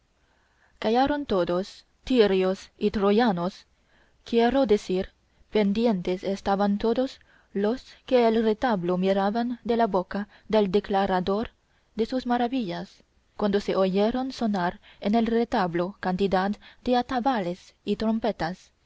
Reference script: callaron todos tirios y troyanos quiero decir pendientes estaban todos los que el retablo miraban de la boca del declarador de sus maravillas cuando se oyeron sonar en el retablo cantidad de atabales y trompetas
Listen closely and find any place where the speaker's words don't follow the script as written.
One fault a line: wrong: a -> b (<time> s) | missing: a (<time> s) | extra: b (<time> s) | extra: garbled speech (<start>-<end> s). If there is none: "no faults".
no faults